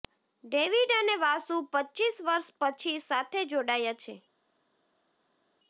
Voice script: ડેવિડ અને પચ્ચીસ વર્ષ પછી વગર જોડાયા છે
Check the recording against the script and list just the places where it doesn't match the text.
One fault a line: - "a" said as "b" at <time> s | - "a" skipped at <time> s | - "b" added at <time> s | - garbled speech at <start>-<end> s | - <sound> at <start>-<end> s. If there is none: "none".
- "વાસુ" added at 1.2 s
- "વગર" said as "સાથે" at 3.0 s